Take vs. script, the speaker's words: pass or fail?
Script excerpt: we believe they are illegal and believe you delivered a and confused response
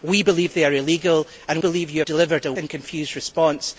pass